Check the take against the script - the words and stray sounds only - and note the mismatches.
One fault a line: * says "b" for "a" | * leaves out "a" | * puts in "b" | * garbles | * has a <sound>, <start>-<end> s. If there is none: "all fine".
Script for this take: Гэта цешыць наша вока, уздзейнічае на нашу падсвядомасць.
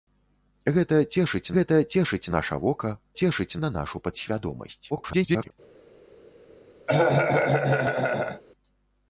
* puts in "гэта цешыць"
* says "цешыць" for "уздзейнічае"
* garbles
* has a cough, 6.9-8.4 s